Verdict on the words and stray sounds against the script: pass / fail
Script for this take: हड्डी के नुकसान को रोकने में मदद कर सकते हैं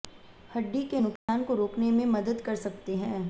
fail